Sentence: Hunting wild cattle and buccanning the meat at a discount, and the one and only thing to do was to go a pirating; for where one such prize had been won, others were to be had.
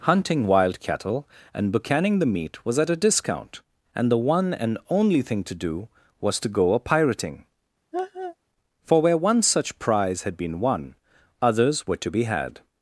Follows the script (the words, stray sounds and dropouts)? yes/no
no